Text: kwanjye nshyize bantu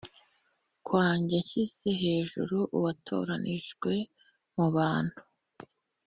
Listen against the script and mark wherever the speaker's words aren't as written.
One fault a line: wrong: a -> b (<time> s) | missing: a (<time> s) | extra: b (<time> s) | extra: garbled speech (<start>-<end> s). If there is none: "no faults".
extra: hejuru uwatoranijwe mu (2.0 s)